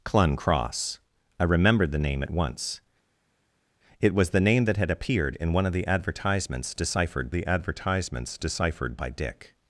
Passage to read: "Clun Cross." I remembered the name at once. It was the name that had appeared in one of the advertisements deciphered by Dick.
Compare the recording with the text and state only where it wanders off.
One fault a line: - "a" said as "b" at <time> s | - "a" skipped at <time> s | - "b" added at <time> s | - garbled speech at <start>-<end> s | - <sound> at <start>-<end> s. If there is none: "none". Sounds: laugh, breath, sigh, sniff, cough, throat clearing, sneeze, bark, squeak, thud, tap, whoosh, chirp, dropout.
- "the advertisements deciphered" added at 7.3 s